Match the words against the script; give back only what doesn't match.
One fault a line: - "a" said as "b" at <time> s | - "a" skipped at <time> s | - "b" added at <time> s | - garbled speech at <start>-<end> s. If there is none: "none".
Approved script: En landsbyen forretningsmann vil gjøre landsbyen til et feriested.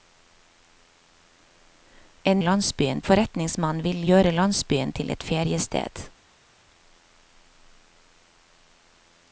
none